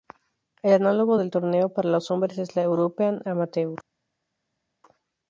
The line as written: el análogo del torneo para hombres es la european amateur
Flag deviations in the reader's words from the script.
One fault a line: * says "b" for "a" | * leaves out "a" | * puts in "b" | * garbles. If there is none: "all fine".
* puts in "los"